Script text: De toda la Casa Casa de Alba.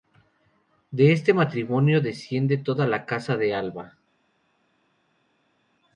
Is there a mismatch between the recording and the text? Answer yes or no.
yes